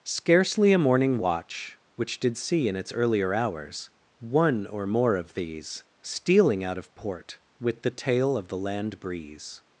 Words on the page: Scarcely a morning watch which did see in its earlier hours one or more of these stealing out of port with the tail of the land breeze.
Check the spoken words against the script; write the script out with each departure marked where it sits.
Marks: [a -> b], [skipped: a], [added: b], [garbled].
Scarcely a morning watch which did see in its earlier hours one or more of these stealing out of port with the tail of the land breeze.